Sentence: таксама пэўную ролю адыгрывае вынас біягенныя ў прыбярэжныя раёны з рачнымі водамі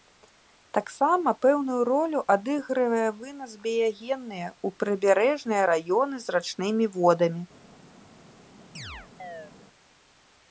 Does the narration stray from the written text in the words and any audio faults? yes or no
yes